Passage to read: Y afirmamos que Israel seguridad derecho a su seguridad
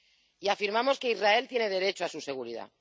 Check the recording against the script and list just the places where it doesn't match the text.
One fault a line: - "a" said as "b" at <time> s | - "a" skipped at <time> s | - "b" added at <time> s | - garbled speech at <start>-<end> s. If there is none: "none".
- "seguridad" said as "tiene" at 1.5 s